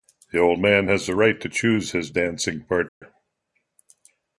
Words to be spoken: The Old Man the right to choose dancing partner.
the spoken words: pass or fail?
fail